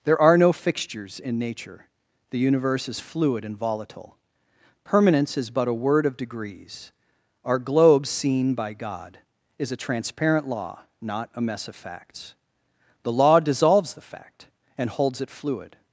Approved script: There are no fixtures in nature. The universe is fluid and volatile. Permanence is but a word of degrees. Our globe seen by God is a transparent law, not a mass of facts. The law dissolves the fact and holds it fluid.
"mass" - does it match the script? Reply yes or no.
no